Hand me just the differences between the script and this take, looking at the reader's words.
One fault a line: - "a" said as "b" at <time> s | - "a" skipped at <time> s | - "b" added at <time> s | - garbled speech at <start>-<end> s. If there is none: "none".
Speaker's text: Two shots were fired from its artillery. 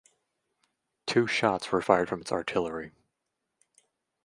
none